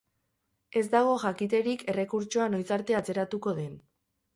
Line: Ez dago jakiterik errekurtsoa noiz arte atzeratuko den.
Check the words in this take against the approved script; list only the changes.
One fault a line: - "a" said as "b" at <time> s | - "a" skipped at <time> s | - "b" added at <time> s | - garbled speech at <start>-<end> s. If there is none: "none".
none